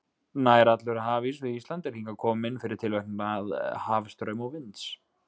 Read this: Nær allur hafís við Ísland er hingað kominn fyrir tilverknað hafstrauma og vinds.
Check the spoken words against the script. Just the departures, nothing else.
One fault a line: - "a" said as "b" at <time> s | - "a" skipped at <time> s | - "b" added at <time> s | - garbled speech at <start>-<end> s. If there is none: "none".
none